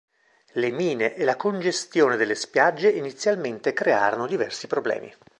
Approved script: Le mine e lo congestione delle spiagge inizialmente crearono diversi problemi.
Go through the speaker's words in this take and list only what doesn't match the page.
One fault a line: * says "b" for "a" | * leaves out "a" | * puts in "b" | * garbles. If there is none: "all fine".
* says "la" for "lo"